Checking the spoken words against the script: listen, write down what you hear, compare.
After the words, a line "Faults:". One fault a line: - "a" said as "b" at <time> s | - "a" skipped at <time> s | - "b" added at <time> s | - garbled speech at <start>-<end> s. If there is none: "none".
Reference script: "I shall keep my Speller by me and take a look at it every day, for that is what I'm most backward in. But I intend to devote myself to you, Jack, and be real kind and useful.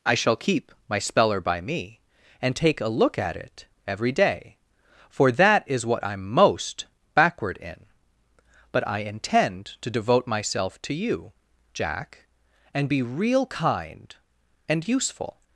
"I shall keep my Speller by me and take a look at it every day, for that is what I'm most backward in. But I intend to devote myself to you, Jack, and be real kind and useful.
Faults:
none